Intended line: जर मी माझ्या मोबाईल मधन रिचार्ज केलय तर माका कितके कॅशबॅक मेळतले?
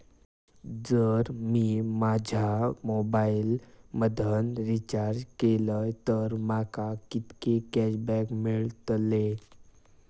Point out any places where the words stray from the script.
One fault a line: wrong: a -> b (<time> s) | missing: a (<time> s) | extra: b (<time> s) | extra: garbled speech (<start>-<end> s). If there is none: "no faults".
no faults